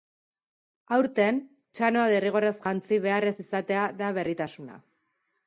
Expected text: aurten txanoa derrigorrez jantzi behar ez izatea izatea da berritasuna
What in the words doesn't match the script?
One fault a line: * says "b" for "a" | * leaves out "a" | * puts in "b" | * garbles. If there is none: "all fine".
* leaves out "izatea"